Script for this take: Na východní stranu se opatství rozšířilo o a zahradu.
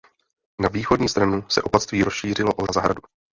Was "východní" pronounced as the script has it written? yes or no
yes